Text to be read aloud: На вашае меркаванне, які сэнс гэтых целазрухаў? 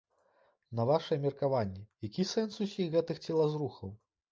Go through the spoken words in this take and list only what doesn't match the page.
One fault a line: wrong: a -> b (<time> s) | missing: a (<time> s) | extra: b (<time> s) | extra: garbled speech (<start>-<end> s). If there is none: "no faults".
extra: усіх (2.7 s)